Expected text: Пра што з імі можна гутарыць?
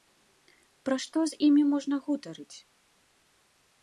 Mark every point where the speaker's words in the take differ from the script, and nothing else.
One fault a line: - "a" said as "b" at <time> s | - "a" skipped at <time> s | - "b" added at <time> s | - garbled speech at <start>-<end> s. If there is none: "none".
none